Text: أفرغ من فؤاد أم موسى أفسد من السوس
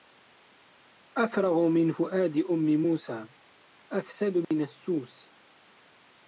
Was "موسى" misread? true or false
false